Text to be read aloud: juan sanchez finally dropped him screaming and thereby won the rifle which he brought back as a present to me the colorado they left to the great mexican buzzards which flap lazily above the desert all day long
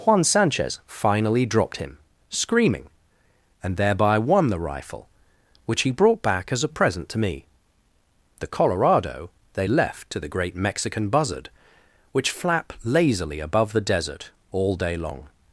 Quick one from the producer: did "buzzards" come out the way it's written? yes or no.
no